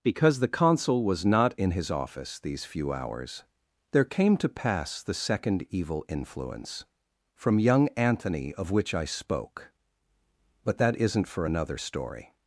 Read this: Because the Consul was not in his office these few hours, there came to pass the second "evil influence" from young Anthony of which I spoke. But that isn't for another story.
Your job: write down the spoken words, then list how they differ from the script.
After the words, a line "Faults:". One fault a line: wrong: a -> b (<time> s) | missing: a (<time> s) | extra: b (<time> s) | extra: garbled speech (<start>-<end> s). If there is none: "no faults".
Because the Consul was not in his office these few hours, there came to pass the second "evil influence" from young Anthony of which I spoke. But that isn't for another story.
Faults:
no faults